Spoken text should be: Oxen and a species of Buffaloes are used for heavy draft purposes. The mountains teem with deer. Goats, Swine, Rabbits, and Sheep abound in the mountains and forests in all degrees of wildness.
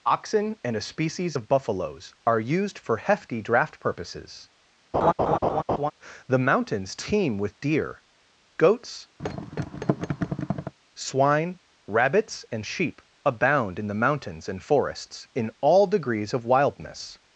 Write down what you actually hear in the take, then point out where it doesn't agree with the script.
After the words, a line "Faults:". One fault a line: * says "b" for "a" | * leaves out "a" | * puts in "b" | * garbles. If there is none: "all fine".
Oxen and a species of Buffaloes are used for hefty draft purposes. The mountains teem with deer. Goats, Swine, Rabbits, and Sheep abound in the mountains and forests in all degrees of wildness.
Faults:
* says "hefty" for "heavy"